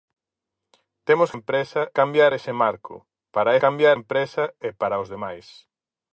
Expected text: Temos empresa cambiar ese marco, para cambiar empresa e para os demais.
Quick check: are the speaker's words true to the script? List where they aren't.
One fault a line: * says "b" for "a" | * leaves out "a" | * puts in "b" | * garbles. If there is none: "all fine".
all fine